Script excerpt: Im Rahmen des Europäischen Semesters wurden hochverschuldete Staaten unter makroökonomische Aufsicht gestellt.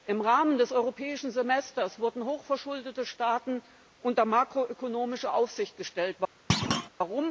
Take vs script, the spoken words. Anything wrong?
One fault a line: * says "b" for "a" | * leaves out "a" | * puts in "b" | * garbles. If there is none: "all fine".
all fine